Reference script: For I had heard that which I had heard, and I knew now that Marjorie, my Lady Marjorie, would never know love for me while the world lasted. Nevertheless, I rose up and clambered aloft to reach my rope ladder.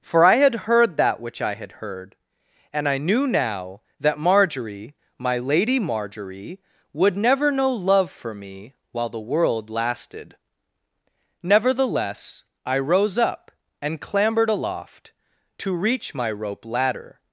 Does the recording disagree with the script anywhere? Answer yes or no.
no